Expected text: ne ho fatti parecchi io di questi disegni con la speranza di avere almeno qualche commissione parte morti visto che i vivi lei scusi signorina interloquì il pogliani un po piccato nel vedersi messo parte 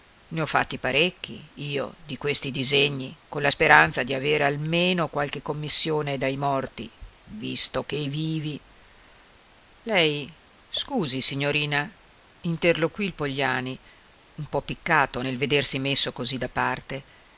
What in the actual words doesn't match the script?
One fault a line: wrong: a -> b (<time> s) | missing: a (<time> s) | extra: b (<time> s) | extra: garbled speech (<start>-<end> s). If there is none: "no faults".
wrong: parte -> dai (6.2 s)
extra: così da (16.1 s)